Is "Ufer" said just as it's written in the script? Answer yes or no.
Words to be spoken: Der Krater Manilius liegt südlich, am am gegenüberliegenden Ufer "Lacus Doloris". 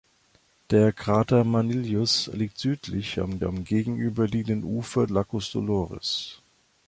yes